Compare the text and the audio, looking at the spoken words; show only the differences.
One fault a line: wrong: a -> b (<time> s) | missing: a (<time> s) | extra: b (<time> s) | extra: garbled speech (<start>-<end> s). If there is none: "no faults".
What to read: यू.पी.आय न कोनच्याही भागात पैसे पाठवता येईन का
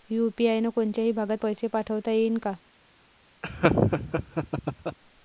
no faults